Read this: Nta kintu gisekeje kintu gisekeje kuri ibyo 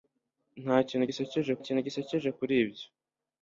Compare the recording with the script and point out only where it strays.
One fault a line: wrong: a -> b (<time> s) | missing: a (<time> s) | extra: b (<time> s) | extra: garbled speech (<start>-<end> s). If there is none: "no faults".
no faults